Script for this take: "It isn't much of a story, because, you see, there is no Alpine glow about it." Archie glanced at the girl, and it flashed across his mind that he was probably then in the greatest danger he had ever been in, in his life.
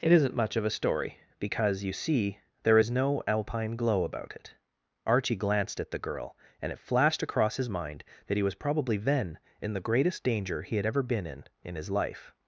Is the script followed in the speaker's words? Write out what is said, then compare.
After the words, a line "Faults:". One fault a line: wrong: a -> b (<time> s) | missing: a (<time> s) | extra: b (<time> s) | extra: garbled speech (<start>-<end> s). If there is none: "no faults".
"It isn't much of a story, because, you see, there is no Alpine glow about it." Archie glanced at the girl, and it flashed across his mind that he was probably then in the greatest danger he had ever been in, in his life.
Faults:
no faults